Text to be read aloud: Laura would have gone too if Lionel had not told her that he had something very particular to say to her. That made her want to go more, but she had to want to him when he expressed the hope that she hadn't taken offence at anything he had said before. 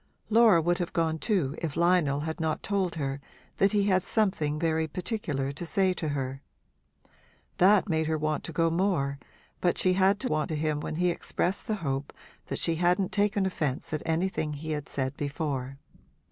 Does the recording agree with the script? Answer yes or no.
yes